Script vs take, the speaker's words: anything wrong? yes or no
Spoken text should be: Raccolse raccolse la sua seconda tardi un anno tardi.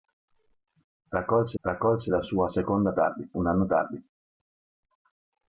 no